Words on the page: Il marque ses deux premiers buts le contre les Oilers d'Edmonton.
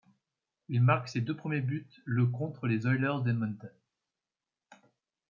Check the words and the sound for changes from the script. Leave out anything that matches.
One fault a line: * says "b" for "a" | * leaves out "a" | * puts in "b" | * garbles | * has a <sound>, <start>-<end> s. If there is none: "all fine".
all fine